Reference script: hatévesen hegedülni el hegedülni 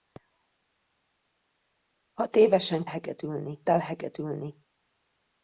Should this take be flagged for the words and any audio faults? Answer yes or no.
no